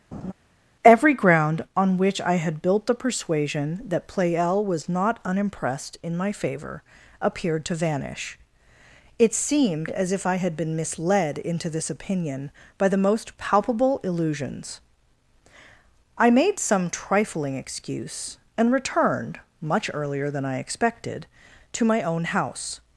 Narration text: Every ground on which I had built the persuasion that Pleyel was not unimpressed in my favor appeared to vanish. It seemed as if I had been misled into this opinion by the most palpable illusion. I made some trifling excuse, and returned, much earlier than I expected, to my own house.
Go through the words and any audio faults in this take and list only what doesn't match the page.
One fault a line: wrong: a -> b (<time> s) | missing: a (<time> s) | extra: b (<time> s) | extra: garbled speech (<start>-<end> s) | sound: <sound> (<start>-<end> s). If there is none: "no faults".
sound: laugh (0.1-0.3 s)
wrong: illusion -> illusions (14.0 s)